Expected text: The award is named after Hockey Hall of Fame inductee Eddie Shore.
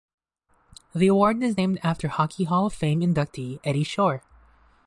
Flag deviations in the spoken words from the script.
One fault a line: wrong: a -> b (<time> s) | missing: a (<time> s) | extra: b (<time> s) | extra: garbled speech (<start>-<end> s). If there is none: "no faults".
no faults